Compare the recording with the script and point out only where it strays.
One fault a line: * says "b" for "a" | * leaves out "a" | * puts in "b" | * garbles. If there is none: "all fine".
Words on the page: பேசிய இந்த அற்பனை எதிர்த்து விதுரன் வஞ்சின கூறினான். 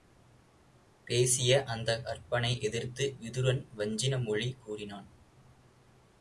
* says "அந்த" for "இந்த"
* puts in "மொழி"